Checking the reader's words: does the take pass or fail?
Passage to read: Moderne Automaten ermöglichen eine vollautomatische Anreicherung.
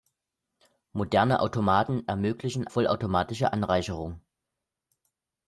fail